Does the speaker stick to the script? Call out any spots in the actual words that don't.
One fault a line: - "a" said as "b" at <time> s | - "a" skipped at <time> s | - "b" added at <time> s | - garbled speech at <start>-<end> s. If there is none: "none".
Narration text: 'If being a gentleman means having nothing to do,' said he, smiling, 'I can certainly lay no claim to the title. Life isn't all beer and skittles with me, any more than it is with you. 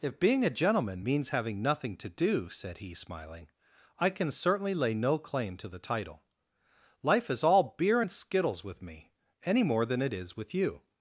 - "isn't" said as "is" at 7.3 s